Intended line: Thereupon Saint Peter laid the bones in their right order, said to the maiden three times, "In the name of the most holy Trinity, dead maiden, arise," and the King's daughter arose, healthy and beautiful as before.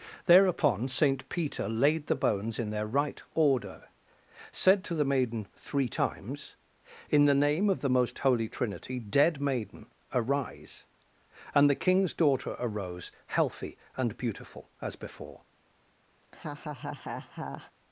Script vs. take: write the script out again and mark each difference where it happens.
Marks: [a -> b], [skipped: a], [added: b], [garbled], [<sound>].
Thereupon Saint Peter laid the bones in their right order, said to the maiden three times, "In the name of the most holy Trinity, dead maiden, arise," and the King's daughter arose, healthy and beautiful as before. [laugh]